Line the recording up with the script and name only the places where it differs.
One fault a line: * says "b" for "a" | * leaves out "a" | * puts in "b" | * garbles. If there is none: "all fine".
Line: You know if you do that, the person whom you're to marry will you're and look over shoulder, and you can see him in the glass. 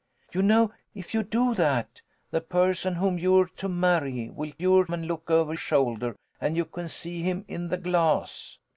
all fine